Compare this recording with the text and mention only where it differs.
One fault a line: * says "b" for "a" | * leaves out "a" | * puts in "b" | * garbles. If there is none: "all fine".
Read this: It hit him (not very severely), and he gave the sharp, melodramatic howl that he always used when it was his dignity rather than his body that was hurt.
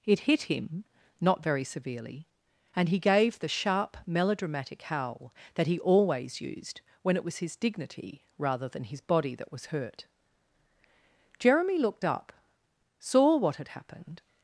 * puts in "Jeremy looked up saw what had happened"